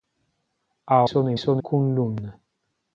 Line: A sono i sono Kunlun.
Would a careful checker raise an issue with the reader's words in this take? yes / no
no